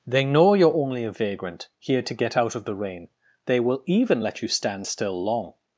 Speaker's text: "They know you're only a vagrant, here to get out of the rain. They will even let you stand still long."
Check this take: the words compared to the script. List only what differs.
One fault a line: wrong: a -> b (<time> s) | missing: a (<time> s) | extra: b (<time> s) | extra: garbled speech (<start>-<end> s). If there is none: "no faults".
no faults